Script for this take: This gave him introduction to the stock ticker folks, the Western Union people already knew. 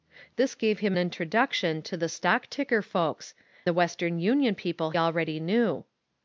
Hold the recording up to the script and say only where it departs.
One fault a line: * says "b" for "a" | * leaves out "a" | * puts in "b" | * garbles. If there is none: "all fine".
all fine